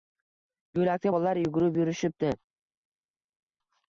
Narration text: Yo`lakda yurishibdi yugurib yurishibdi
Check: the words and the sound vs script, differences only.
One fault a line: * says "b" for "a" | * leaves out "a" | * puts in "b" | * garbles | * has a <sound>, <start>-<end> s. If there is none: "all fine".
* says "bolalar" for "yurishibdi"